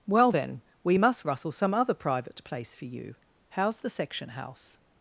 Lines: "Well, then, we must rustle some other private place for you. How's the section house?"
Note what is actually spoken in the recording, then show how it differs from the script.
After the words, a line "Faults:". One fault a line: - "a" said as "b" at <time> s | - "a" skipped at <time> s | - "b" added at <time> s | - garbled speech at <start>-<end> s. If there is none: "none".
"Well, then, we must rustle some other private place for you. How's the section house?"
Faults:
none